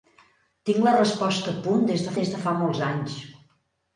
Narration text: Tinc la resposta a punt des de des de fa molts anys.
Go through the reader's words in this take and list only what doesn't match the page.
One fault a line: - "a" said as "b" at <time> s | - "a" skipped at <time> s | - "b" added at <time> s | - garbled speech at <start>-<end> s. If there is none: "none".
none